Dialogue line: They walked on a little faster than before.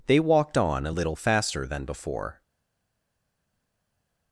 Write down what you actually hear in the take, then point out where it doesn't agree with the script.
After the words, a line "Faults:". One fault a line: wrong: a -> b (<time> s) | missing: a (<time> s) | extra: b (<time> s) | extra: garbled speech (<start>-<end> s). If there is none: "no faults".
They walked on a little faster than before.
Faults:
no faults